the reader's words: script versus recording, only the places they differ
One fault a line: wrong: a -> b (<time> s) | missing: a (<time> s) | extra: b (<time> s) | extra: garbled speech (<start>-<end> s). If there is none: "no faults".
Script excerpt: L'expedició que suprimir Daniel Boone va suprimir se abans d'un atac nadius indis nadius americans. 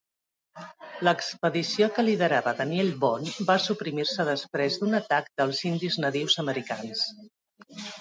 wrong: suprimir -> liderava (2.1 s)
wrong: abans -> després (4.3 s)
wrong: nadius -> dels (5.4 s)